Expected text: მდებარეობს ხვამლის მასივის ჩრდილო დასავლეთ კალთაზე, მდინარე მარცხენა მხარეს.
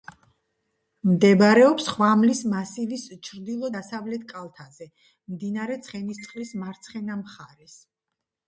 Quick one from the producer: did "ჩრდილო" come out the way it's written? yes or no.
yes